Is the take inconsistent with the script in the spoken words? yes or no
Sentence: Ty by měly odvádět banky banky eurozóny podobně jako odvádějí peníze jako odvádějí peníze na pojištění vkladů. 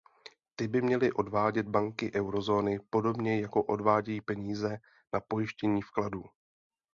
yes